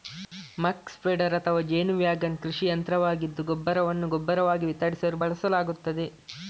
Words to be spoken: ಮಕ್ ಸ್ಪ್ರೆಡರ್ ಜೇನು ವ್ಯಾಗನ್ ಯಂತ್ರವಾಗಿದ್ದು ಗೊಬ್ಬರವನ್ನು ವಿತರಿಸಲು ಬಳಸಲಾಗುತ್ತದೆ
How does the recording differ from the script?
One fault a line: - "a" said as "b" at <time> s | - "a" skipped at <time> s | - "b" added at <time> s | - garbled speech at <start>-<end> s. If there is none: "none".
- "ಅಥವಾ" added at 1.4 s
- "ಕೃಷಿ" added at 2.4 s
- "ಗೊಬ್ಬರವಾಗಿ" added at 4.2 s